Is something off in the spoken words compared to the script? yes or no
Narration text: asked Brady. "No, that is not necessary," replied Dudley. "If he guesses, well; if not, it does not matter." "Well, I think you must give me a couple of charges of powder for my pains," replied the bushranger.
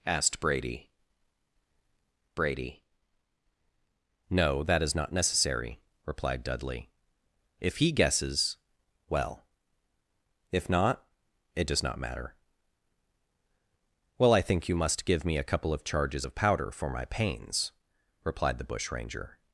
yes